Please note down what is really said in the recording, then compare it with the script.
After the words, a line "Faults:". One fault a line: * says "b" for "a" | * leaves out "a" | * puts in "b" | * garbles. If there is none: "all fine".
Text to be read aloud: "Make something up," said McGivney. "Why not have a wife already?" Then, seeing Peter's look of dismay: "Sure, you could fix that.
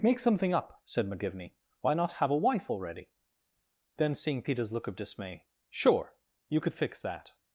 "Make something up," said McGivney. "Why not have a wife already?" Then, seeing Peter's look of dismay: "Sure, you could fix that.
Faults:
all fine